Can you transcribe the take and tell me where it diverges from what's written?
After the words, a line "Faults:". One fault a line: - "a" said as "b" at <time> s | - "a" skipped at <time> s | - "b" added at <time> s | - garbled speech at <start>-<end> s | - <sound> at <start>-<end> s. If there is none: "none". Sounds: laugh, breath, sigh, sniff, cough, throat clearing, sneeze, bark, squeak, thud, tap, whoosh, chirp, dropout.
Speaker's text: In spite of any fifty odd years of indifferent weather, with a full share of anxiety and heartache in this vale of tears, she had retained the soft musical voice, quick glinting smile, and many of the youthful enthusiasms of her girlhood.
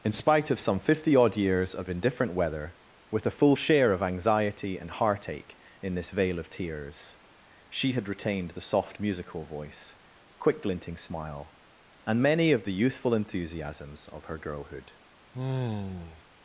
In spite of some fifty odd years of indifferent weather, with a full share of anxiety and heartache in this vale of tears, she had retained the soft musical voice, quick glinting smile, and many of the youthful enthusiasms of her girlhood.
Faults:
- "any" said as "some" at 0.6 s
- sigh at 15.3-16.2 s